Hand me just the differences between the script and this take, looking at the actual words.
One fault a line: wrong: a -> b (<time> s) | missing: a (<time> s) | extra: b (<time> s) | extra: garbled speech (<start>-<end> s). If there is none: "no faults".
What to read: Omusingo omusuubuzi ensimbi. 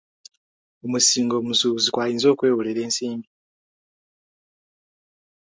extra: kwayinza okwewolera (1.9 s)